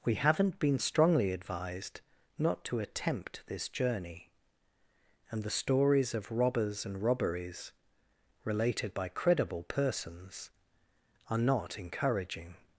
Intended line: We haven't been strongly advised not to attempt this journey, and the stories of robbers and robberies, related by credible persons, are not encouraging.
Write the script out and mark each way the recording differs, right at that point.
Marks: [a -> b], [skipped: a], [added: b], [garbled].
We haven't been strongly advised not to attempt this journey, and the stories of robbers and robberies, related by credible persons, are not encouraging.